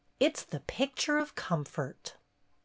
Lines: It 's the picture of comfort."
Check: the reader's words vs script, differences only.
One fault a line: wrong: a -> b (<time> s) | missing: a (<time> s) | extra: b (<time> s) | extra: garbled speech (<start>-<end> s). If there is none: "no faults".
no faults